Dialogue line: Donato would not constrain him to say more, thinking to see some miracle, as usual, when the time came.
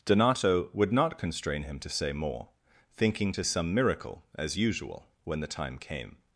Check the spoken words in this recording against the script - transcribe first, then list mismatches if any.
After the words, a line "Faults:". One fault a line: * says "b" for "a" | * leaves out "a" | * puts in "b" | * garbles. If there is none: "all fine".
Donato would not constrain him to say more, thinking to some miracle, as usual, when the time came.
Faults:
* leaves out "see"